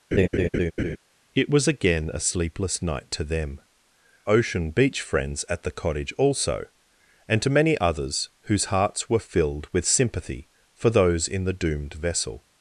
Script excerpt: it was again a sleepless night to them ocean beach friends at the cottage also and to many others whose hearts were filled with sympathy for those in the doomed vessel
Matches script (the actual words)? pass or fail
pass